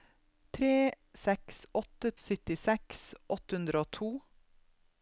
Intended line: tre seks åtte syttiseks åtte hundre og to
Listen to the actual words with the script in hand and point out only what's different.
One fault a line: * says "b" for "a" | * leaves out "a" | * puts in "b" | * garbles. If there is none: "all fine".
all fine